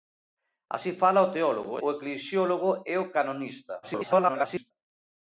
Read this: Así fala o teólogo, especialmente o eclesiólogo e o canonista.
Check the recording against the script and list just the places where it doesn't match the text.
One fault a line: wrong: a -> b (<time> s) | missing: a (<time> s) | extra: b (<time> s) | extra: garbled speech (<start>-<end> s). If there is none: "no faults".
missing: especialmente (1.7 s)
extra: garbled speech (3.8-4.7 s)